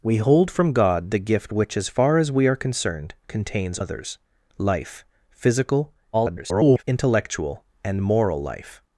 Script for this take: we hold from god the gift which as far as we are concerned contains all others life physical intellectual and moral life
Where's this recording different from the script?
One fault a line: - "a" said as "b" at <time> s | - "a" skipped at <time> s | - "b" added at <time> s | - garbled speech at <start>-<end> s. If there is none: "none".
- "all" skipped at 3.8 s
- garbled speech at 6.1-6.8 s